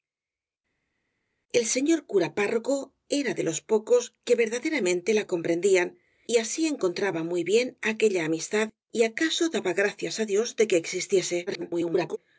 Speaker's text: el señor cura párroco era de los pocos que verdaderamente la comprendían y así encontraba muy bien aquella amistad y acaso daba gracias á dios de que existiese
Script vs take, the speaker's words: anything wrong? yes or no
yes